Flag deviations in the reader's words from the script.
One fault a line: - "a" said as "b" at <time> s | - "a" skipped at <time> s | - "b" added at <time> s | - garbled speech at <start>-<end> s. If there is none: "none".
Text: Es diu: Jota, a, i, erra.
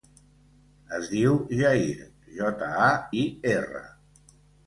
- "Jair" added at 1.6 s